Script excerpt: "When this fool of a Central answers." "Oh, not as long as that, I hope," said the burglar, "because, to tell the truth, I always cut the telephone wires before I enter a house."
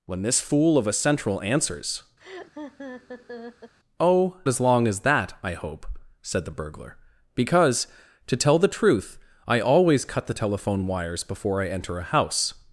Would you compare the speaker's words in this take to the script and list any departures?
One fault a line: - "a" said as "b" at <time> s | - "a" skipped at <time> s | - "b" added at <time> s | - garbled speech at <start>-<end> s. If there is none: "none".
- "not" skipped at 4.4 s